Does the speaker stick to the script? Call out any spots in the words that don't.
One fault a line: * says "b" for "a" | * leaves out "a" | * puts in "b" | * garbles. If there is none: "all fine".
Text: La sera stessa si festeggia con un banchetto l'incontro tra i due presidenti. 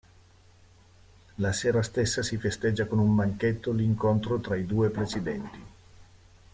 all fine